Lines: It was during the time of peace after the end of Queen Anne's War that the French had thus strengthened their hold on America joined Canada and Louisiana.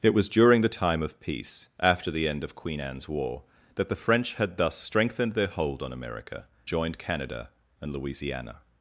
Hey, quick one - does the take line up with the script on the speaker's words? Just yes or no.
yes